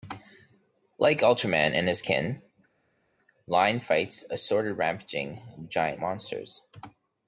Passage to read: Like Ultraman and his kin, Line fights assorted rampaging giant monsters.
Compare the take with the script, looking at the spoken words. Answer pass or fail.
pass